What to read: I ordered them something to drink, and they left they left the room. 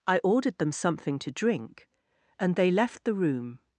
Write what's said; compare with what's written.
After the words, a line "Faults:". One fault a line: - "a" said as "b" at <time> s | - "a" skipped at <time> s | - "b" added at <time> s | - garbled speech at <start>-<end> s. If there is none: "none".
I ordered them something to drink, and they left the room.
Faults:
- "they left" skipped at 3.0 s